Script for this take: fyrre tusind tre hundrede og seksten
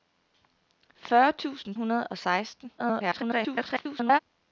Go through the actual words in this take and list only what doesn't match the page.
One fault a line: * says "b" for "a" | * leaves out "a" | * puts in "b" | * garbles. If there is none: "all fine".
* leaves out "tre"
* garbles